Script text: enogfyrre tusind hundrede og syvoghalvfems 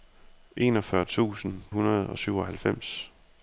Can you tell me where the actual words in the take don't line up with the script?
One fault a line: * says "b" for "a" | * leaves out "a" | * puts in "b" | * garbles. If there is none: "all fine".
all fine